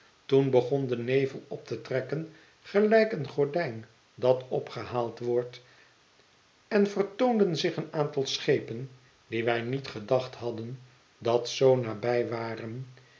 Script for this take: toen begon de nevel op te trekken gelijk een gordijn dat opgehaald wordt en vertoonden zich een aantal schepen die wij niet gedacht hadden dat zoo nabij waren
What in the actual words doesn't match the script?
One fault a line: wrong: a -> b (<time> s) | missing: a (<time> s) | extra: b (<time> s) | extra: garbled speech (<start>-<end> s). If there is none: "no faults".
no faults